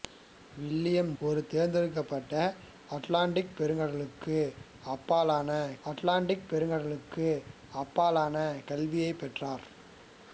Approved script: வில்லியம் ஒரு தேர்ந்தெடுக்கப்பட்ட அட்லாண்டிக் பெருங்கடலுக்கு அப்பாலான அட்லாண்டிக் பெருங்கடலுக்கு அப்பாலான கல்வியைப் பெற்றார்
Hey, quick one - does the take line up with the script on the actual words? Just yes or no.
yes